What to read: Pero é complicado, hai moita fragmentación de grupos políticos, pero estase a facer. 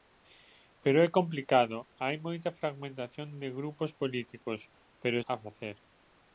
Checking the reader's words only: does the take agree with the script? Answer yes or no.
no